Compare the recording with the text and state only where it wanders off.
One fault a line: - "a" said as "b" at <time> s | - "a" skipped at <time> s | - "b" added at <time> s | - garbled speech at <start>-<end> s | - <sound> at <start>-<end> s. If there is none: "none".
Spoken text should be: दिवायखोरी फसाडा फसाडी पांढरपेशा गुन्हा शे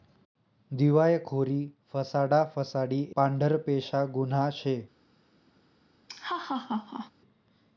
- laugh at 6.1-7.1 s